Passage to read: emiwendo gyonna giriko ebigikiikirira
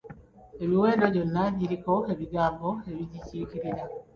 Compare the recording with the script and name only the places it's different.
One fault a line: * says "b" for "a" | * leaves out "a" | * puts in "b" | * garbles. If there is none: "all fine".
* puts in "ebigambo"